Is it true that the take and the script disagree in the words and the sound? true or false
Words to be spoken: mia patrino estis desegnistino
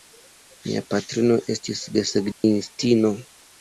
true